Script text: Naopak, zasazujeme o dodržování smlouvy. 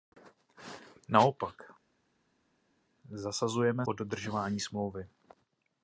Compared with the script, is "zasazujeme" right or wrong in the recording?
right